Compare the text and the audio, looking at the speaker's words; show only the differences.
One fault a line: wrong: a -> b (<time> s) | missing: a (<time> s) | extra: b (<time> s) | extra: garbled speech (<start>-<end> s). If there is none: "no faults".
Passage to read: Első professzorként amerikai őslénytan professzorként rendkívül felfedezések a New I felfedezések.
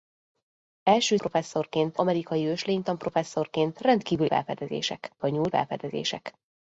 no faults